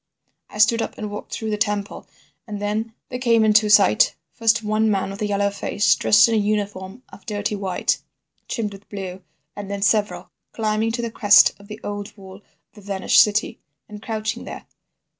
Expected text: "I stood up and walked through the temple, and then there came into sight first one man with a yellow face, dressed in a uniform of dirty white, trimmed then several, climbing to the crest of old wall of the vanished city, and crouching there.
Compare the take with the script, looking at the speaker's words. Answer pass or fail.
fail